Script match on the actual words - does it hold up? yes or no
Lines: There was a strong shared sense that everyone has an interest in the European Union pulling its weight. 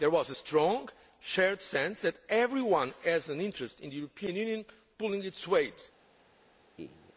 yes